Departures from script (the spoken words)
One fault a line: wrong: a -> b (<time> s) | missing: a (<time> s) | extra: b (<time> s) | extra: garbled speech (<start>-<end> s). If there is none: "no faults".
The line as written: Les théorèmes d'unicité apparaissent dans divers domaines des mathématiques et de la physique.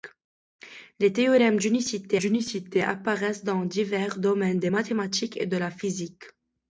extra: d'unicité (2.2 s)